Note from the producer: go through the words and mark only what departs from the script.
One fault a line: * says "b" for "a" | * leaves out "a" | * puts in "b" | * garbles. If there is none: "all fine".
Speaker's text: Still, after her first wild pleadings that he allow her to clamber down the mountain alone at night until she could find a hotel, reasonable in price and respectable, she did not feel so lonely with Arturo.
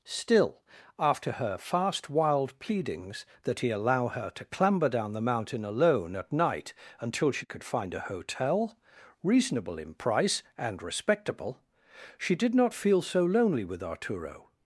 * says "fast" for "first"